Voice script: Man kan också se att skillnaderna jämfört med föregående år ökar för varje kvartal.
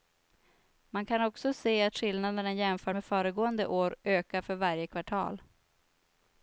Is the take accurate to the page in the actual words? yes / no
yes